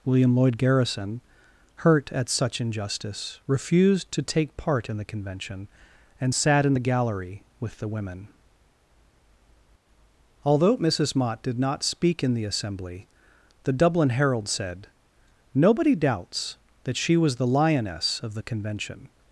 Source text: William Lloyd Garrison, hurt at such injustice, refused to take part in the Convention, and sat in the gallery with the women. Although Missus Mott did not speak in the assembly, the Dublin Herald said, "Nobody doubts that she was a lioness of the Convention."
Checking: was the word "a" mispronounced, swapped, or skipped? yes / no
yes